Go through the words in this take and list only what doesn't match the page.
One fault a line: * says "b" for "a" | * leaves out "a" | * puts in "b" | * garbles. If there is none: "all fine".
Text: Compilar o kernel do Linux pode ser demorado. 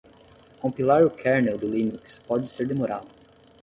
all fine